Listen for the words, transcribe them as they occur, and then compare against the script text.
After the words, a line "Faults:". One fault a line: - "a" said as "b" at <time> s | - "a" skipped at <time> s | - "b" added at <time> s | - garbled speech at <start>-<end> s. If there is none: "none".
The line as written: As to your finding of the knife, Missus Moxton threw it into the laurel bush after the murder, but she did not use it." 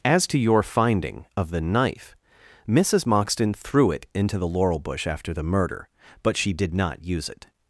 As to your finding of the knife, Missus Moxton threw it into the laurel bush after the murder, but she did not use it."
Faults:
none